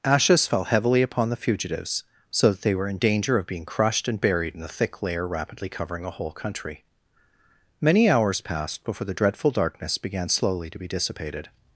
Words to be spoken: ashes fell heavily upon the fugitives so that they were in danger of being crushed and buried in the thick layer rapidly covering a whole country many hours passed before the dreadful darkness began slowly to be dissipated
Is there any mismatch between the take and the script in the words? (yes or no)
no